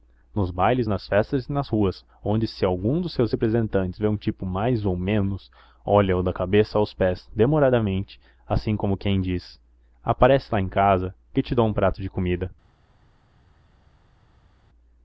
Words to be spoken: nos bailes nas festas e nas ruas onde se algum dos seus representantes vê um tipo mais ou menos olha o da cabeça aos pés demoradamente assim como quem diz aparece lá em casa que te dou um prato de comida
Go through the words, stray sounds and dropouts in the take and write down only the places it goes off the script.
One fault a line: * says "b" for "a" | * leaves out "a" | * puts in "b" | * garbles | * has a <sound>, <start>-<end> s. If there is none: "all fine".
all fine